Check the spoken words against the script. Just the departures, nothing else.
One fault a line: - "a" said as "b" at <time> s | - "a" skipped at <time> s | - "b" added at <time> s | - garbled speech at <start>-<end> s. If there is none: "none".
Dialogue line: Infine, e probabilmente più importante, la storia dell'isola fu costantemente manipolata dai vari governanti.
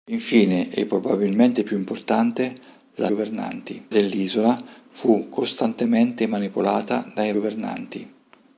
- "storia" said as "governanti" at 3.1 s
- "vari" skipped at 7.3 s